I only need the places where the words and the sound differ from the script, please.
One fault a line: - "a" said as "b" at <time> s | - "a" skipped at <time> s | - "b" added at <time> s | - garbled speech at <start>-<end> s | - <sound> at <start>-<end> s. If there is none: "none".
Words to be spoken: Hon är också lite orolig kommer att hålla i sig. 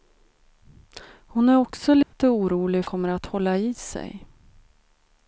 - dropout at 2.0-2.1 s